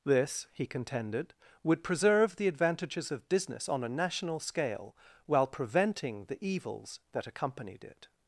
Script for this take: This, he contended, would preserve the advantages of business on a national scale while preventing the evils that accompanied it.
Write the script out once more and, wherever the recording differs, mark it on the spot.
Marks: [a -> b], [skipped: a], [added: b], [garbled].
This, he contended, would preserve the advantages of business on a national scale while preventing the evils that accompanied it.